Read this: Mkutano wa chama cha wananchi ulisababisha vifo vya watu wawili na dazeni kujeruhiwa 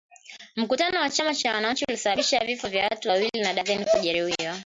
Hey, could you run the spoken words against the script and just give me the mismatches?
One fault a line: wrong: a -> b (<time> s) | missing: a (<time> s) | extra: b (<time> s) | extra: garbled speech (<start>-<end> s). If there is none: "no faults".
no faults